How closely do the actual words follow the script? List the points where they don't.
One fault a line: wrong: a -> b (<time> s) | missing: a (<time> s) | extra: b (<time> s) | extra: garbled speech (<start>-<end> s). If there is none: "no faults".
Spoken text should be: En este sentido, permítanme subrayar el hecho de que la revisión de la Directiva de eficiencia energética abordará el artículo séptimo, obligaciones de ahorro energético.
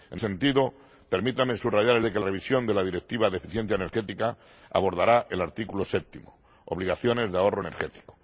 missing: este (0.2 s)
missing: hecho (2.0 s)
missing: la (2.2 s)